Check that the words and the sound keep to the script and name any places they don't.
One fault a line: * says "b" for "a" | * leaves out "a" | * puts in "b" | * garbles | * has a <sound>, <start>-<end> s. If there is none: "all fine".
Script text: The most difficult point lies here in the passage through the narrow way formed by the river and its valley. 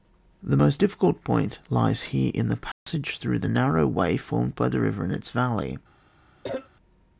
* has a dropout, 2.7-2.9 s
* has a cough, 6.4-6.7 s